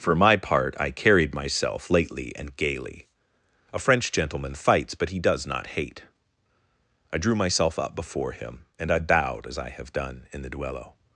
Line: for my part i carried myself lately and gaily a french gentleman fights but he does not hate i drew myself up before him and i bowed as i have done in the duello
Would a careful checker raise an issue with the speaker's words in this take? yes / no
no